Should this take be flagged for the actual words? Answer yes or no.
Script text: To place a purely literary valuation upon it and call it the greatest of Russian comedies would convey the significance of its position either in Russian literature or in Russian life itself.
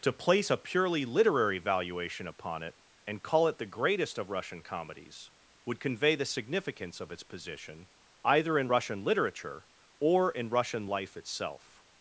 no